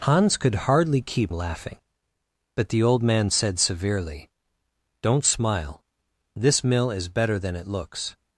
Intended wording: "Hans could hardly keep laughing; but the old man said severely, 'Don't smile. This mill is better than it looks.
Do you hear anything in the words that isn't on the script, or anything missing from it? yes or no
no